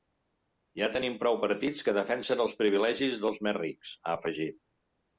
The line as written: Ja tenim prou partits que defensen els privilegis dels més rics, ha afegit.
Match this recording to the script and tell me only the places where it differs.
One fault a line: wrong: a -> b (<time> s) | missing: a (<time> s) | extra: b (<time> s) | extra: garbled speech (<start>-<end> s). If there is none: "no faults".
no faults